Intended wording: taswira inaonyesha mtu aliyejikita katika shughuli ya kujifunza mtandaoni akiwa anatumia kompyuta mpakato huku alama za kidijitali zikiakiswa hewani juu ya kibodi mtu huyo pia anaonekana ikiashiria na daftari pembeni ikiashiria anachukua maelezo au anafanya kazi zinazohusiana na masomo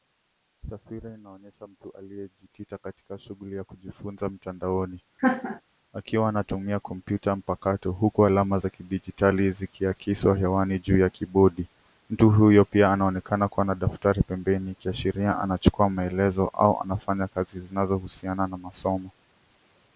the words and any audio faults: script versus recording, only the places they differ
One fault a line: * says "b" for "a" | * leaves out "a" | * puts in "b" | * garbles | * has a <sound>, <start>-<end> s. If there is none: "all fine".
* has a laugh, 5.2-5.6 s
* says "kuwa" for "ikiashiria"